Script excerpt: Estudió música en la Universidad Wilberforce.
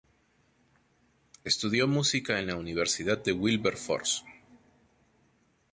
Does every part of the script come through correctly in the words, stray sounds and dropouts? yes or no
no